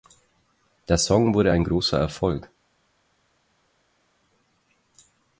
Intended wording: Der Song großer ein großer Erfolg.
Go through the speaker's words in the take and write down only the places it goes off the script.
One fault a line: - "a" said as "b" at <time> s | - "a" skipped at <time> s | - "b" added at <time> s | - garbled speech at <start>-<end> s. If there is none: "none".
- "großer" said as "wurde" at 1.4 s